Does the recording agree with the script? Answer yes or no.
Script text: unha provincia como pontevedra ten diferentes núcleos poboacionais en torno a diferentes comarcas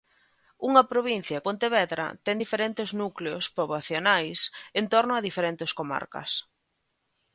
no